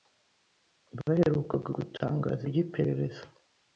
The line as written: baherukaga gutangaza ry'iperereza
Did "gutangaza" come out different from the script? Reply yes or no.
no